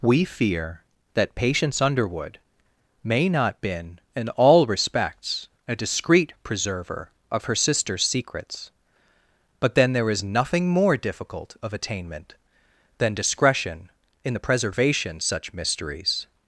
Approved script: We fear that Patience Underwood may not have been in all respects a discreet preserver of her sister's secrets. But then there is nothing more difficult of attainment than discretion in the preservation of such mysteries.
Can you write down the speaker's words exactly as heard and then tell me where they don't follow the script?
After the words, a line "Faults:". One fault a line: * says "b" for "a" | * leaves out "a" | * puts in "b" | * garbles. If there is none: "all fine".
We fear that Patience Underwood may not been in all respects a discreet preserver of her sister's secrets. But then there is nothing more difficult of attainment than discretion in the preservation such mysteries.
Faults:
* leaves out "have"
* leaves out "of"